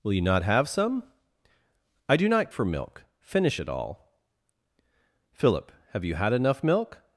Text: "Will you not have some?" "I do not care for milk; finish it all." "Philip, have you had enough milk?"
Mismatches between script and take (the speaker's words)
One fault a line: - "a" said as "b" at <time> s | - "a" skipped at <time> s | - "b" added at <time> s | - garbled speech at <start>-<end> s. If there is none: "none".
- "care" skipped at 2.5 s